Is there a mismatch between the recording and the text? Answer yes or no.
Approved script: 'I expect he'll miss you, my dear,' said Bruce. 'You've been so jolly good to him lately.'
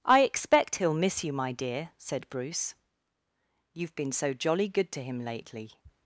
no